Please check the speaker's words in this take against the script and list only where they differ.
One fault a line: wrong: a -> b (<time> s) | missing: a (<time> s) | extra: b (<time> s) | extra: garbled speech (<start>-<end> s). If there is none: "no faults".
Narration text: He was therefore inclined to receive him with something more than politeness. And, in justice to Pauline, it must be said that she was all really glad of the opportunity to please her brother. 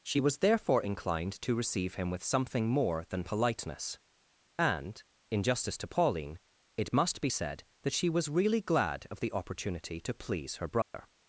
wrong: He -> She (0.0 s)
missing: all (8.3 s)